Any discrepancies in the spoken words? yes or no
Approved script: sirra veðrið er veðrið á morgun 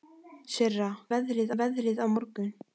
no